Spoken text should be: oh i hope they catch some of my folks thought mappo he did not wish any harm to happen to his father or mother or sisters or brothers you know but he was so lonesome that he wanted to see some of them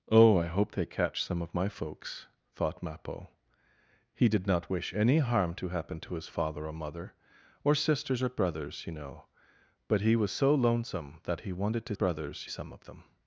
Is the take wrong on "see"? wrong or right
wrong